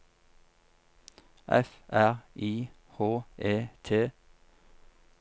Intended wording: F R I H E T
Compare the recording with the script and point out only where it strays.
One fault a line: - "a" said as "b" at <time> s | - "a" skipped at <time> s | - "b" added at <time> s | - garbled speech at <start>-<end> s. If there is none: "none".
none